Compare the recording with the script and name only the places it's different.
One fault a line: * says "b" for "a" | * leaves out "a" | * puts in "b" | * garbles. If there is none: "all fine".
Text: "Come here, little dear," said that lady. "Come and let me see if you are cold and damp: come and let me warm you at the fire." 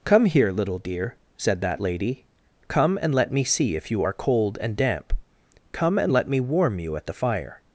all fine